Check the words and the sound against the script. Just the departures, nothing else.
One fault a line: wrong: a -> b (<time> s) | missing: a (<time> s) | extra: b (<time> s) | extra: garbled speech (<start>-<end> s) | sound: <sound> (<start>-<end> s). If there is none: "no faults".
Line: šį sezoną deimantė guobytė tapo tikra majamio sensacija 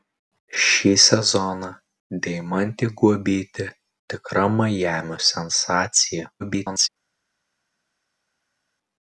missing: tapo (3.7 s)
extra: garbled speech (6.4-6.9 s)